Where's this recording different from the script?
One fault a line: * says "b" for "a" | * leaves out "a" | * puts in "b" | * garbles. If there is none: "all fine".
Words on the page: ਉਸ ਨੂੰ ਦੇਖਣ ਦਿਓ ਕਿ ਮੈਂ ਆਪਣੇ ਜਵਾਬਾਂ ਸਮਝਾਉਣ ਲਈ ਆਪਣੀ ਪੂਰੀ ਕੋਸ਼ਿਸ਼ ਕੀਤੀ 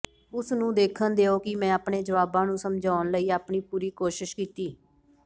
* puts in "ਨੂੰ"